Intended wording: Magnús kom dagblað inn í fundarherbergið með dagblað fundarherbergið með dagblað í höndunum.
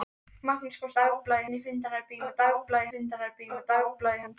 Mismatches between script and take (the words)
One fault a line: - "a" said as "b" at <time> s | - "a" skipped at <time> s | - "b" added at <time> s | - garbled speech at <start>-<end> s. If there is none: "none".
none